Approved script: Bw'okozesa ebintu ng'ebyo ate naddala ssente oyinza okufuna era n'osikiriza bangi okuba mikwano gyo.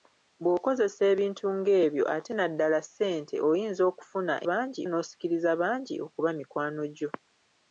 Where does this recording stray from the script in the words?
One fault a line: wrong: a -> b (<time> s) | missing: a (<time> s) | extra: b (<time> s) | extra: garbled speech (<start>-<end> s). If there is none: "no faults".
wrong: era -> bangi (4.5 s)